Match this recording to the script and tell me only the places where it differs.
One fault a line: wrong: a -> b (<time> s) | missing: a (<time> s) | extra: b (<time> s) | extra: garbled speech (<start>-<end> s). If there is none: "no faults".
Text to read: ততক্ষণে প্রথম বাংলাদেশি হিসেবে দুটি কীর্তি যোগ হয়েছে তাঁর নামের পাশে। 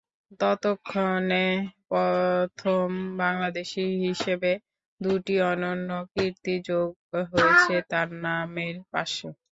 extra: অনন্য (5.5 s)